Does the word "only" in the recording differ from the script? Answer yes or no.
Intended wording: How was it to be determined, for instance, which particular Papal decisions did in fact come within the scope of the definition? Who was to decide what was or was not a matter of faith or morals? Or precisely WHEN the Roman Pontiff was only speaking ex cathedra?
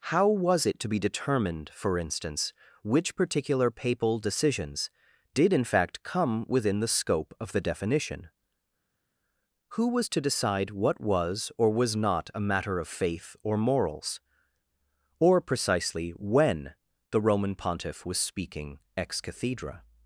yes